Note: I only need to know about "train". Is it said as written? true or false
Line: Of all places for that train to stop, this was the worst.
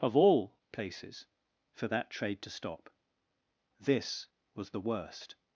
false